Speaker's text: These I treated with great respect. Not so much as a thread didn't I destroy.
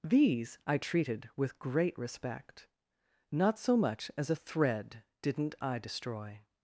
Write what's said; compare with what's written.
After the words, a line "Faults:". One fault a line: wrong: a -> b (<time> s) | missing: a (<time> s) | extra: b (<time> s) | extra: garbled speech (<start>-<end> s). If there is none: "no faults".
These I treated with great respect. Not so much as a thread didn't I destroy.
Faults:
no faults